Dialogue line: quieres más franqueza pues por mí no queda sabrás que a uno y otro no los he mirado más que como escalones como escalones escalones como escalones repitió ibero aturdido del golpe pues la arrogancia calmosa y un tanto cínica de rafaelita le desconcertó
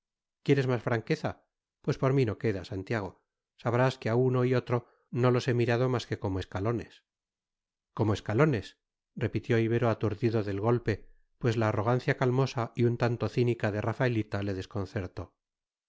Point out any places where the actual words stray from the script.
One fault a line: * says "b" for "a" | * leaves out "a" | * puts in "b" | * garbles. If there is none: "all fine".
* puts in "santiago"
* leaves out "escalones como escalones"